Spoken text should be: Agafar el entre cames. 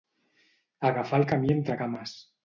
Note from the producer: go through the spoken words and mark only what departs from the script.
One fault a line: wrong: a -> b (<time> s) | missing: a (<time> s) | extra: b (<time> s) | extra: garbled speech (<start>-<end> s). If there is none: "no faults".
extra: camí (1.2 s)